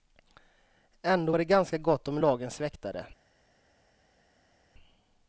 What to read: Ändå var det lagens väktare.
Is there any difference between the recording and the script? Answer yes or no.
yes